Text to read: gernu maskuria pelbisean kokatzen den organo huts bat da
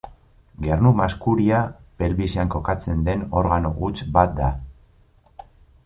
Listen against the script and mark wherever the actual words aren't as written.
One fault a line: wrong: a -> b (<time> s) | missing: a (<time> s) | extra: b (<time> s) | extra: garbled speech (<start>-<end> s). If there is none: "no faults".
no faults